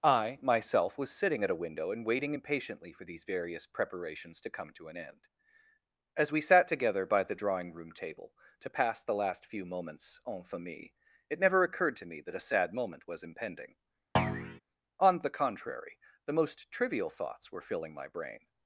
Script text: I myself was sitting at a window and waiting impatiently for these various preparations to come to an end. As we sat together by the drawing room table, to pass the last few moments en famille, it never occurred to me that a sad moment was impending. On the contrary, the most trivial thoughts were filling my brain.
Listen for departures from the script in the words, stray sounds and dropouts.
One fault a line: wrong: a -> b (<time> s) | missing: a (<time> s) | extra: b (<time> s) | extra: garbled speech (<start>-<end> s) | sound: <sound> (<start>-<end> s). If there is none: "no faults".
sound: thud (14.2-14.6 s)